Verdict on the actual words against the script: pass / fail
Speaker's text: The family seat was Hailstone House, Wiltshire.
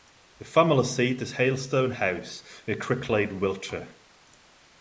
fail